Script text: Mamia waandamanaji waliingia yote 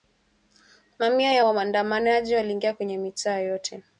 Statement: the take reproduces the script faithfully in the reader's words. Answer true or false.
false